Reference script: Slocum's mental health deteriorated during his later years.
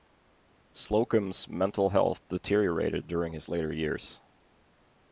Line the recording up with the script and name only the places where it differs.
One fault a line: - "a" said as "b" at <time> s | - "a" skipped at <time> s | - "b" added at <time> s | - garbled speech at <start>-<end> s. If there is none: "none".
none